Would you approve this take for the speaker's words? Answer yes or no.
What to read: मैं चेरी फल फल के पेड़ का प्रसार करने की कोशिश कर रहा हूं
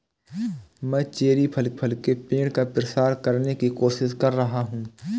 yes